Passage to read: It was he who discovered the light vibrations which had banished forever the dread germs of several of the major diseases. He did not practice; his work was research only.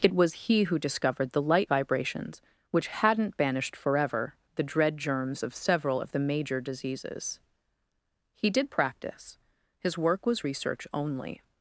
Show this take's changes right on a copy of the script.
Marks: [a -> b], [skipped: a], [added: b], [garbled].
It was he who discovered the light vibrations which [had -> hadn't] banished forever the dread germs of several of the major diseases. He did [skipped: not] practice; his work was research only.